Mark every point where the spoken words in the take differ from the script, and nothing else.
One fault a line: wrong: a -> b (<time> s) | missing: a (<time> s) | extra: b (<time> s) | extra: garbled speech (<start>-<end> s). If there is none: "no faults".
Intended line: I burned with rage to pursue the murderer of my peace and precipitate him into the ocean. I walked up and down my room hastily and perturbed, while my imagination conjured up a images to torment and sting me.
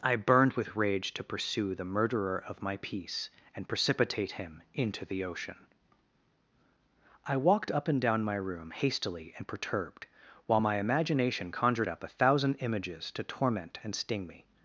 extra: thousand (12.1 s)